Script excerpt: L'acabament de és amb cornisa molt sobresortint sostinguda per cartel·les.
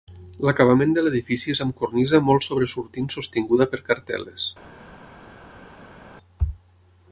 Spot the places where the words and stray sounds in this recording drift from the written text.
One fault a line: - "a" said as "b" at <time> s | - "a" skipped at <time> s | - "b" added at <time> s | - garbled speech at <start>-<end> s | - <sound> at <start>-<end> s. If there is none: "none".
- "l'edifici" added at 1.0 s